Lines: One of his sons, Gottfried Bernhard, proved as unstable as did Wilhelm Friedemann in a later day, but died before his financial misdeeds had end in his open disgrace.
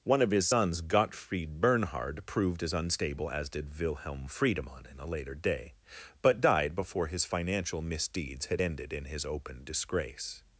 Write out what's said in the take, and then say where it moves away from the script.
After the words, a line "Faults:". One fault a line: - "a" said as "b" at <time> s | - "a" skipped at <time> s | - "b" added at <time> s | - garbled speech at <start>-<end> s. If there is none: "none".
One of his sons, Gottfried Bernhard, proved as unstable as did Wilhelm Friedemann in a later day, but died before his financial misdeeds had ended in his open disgrace.
Faults:
- "end" said as "ended" at 8.6 s